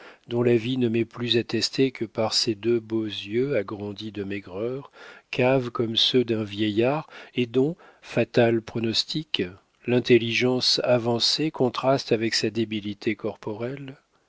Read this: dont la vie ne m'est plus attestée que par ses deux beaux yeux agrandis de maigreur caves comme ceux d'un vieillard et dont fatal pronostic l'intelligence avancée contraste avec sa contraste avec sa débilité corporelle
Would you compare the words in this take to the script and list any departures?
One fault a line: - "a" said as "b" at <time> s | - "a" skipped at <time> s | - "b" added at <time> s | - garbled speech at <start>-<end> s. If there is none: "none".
- "contraste avec sa" skipped at 12.5 s